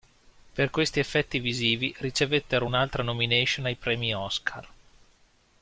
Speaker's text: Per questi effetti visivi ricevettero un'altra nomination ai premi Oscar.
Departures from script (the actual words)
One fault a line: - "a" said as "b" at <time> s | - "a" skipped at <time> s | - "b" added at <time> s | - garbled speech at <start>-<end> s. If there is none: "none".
none